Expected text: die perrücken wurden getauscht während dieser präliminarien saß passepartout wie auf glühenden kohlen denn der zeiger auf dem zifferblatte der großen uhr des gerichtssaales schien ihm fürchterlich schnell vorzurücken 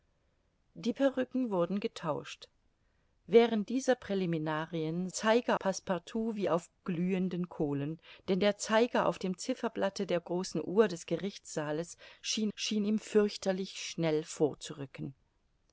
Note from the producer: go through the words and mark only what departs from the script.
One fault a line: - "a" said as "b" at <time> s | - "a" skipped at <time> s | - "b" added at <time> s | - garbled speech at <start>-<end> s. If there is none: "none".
- "saß" said as "zeiger" at 5.1 s
- "schien" added at 12.5 s